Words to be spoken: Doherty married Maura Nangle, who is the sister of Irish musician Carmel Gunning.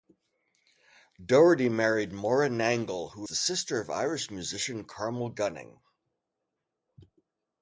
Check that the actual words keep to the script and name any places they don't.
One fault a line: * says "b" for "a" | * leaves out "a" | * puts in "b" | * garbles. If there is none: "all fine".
* leaves out "is"